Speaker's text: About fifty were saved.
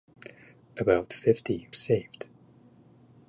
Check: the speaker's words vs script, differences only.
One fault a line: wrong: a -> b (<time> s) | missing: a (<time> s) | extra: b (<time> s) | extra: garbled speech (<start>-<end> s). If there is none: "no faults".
missing: were (1.7 s)